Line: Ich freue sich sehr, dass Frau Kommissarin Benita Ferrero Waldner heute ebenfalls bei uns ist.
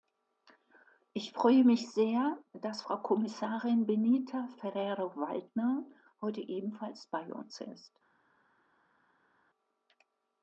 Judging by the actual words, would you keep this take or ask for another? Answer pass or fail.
fail